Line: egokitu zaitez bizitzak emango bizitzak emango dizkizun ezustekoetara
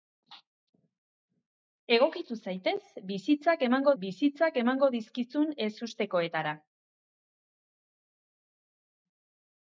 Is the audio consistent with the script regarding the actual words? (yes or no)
yes